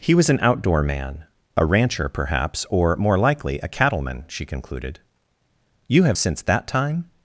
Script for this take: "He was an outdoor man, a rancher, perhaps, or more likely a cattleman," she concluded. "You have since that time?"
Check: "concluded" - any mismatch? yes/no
no